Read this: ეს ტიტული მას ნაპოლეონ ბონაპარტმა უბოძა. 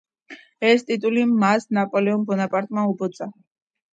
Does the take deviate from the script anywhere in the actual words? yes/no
no